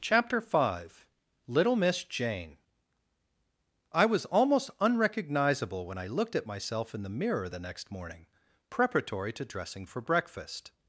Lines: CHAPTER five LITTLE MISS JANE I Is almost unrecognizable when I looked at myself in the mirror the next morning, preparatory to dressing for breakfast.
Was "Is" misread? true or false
true